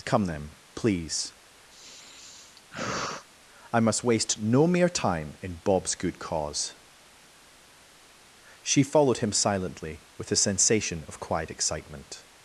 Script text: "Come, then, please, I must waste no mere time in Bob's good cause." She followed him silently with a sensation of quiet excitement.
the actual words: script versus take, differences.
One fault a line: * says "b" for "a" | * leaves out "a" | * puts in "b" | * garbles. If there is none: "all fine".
all fine